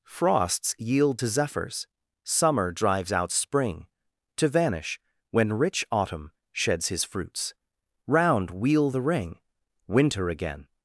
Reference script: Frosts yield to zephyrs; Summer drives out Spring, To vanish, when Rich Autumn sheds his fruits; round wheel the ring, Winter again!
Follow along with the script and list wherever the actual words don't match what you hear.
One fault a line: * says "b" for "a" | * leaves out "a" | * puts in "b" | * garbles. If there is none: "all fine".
all fine